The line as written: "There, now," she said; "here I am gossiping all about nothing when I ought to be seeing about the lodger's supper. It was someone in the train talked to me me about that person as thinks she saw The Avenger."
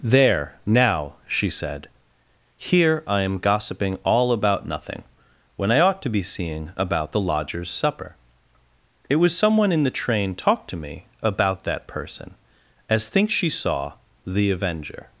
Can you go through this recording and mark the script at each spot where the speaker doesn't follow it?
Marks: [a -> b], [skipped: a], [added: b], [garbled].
"There, now," she said; "here I am gossiping all about nothing when I ought to be seeing about the lodger's supper. It was someone in the train talked to me [skipped: me] about that person as thinks she saw The Avenger."